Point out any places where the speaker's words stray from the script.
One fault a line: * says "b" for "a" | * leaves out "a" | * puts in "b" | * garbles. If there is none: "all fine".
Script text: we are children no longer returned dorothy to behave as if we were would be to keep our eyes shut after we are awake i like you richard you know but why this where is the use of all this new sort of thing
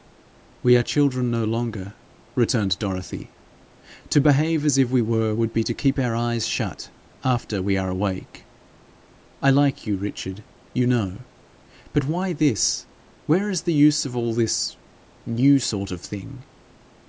all fine